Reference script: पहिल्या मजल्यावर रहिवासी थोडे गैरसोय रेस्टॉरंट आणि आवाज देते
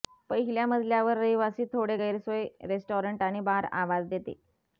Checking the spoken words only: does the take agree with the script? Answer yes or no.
no